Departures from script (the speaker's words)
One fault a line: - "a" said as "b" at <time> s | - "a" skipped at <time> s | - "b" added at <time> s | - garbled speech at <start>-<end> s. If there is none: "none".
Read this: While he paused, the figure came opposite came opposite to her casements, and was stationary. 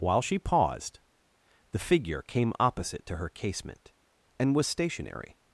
- "he" said as "she" at 0.2 s
- "came opposite" skipped at 3.0 s
- "casements" said as "casement" at 3.3 s